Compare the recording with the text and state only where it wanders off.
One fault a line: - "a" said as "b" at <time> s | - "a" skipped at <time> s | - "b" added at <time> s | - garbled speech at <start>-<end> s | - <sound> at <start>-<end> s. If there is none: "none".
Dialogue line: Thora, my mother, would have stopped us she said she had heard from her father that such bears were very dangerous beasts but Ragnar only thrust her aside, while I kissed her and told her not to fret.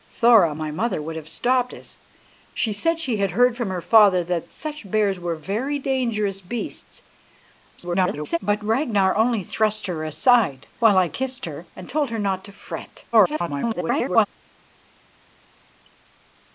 - garbled speech at 7.8-8.4 s
- garbled speech at 13.1-14.3 s